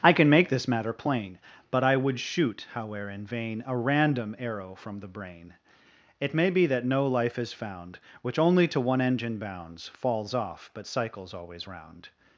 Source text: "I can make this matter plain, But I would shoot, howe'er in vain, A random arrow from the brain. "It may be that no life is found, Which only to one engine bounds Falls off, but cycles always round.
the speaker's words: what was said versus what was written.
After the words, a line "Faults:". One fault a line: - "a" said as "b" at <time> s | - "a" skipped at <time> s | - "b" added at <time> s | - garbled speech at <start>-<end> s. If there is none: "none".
"I can make this matter plain, But I would shoot, howe'er in vain, A random arrow from the brain. "It may be that no life is found, Which only to one engine bounds Falls off, but cycles always round.
Faults:
none